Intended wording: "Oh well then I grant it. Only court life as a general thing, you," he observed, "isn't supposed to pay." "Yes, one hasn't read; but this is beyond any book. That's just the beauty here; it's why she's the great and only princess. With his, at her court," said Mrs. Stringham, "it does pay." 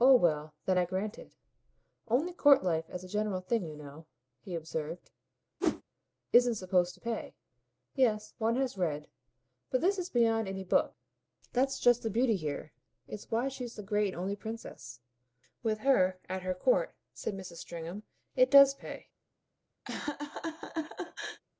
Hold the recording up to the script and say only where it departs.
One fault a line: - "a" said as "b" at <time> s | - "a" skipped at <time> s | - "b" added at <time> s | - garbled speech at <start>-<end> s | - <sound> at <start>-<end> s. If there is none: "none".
- "know" added at 3.8 s
- whoosh at 5.6-5.8 s
- "hasn't" said as "has" at 8.5 s
- "his" said as "her" at 15.8 s
- laugh at 19.9-21.4 s